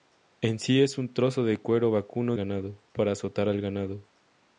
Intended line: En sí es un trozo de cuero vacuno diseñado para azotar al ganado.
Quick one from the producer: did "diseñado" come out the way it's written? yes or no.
no